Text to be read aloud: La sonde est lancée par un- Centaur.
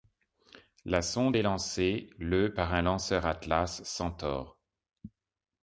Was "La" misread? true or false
false